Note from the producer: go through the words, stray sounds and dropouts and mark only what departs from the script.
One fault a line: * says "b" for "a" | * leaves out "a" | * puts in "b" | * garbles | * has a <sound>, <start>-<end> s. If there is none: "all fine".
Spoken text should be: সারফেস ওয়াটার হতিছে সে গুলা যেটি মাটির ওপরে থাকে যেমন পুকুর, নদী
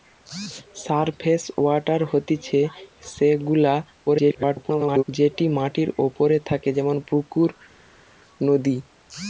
* garbles